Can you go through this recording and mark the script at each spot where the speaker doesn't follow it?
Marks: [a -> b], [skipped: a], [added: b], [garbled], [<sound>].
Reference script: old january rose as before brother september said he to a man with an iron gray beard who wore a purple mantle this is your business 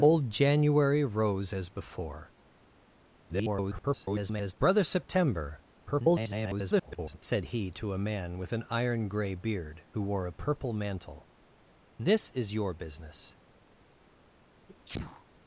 old january rose as before [garbled] brother september [garbled] said he to a man with an iron gray beard who wore a purple mantle this is your business [sneeze]